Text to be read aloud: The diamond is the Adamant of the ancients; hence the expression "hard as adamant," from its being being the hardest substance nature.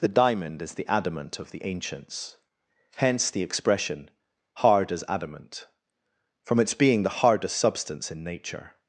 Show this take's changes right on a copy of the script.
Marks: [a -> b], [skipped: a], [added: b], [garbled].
The diamond is the Adamant of the ancients; hence the expression "hard as adamant," from its being [skipped: being] the hardest substance [added: in] nature.